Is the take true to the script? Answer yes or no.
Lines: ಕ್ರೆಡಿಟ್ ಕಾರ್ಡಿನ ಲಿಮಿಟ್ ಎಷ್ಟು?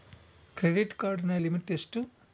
yes